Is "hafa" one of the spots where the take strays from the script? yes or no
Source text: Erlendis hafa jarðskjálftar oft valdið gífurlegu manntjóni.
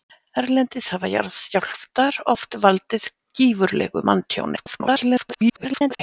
no